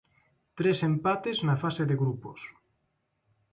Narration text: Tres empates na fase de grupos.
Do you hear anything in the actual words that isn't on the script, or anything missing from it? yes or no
no